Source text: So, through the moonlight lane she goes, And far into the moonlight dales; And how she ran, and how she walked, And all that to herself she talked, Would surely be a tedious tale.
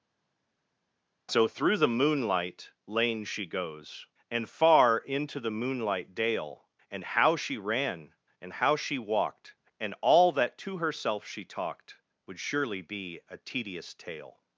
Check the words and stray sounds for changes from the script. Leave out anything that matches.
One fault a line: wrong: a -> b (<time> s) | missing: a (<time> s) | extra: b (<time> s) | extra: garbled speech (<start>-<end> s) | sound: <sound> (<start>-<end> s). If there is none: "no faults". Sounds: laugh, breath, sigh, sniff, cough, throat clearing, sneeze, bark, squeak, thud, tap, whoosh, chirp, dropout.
wrong: dales -> dale (6.1 s)